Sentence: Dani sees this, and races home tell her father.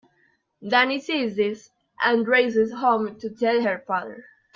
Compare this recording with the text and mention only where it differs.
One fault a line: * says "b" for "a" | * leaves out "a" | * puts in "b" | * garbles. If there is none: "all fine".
* puts in "to"